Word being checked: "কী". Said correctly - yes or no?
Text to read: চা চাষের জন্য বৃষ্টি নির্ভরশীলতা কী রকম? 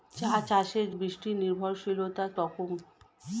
no